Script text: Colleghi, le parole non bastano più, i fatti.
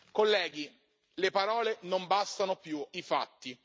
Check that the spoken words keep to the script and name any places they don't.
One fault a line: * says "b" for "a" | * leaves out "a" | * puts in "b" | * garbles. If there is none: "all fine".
all fine